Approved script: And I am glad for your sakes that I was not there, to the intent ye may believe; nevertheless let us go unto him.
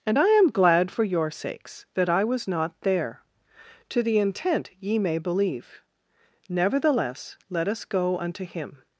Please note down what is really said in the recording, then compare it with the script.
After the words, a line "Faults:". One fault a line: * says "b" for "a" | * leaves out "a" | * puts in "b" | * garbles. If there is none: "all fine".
And I am glad for your sakes that I was not there, to the intent ye may believe; nevertheless let us go unto him.
Faults:
all fine